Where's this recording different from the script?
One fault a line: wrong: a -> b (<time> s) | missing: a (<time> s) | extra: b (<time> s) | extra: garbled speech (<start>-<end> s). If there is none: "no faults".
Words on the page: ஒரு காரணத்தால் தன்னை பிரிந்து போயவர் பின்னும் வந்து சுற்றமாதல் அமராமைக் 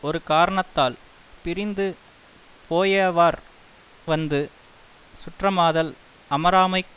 missing: தன்னை (0.9 s)
missing: பின்னும் (3.4 s)